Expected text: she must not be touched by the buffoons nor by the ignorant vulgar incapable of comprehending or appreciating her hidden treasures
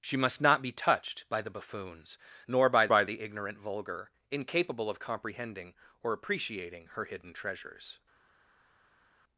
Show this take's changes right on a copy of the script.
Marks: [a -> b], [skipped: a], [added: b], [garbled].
she must not be touched by the buffoons nor by [added: by] the ignorant vulgar incapable of comprehending or appreciating her hidden treasures